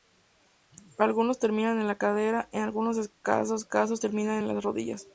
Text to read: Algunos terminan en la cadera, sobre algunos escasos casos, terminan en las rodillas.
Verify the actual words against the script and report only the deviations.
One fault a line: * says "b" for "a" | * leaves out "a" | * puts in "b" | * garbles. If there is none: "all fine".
* says "en" for "sobre"